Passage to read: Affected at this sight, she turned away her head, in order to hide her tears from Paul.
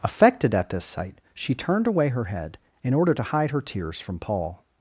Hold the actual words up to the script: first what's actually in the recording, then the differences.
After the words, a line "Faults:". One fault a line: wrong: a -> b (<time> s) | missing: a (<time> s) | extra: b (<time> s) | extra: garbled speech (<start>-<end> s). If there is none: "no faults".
Affected at this sight, she turned away her head, in order to hide her tears from Paul.
Faults:
no faults